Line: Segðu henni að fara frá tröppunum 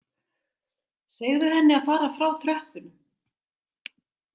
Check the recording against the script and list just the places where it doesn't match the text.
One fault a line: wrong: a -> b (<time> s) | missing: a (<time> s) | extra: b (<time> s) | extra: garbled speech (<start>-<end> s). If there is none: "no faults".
no faults